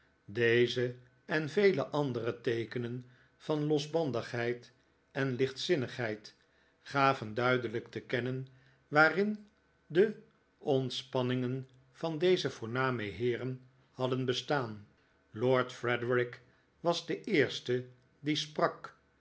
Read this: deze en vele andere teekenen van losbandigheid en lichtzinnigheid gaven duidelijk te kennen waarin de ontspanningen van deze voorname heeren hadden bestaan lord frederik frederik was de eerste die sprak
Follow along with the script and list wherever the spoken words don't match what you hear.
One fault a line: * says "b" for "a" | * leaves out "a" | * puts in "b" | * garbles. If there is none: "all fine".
* leaves out "frederik"